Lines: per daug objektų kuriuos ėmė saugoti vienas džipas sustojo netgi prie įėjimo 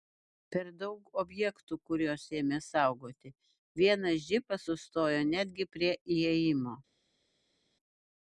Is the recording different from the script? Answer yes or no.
no